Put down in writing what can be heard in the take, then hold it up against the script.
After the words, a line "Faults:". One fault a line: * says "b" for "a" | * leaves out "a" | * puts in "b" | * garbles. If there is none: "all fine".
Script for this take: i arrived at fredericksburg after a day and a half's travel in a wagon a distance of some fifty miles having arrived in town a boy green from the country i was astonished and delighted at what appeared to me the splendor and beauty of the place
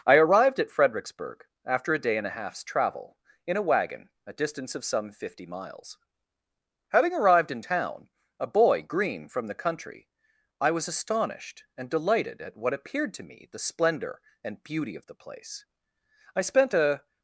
i arrived at fredericksburg after a day and a half's travel in a wagon a distance of some fifty miles having arrived in town a boy green from the country i was astonished and delighted at what appeared to me the splendor and beauty of the place i spent a
Faults:
* puts in "i spent a"